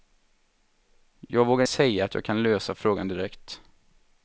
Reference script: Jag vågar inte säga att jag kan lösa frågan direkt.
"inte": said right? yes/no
no